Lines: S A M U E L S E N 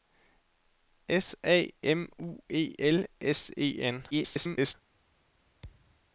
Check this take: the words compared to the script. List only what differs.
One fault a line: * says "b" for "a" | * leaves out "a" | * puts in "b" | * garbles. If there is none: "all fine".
* garbles